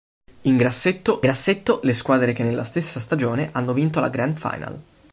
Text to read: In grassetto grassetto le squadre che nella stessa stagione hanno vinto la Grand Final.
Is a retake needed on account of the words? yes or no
no